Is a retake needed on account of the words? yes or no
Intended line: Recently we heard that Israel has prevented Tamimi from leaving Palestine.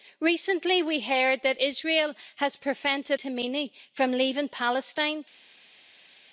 no